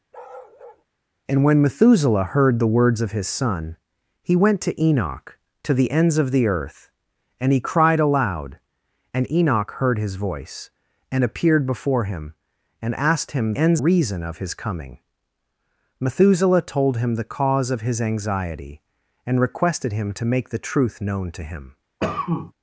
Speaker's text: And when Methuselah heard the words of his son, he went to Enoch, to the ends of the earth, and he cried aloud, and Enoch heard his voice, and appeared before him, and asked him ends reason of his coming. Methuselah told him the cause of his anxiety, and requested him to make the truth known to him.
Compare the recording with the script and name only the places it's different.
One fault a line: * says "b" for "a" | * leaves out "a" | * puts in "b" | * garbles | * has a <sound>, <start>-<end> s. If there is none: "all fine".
* has a bark, 0.1-0.8 s
* has a cough, 22.0-22.5 s